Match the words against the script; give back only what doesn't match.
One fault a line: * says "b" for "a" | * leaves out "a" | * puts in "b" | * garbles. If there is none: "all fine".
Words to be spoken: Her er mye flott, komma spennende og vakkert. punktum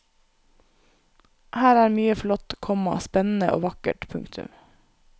all fine